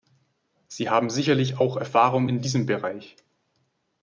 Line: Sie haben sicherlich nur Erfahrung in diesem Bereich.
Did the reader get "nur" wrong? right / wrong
wrong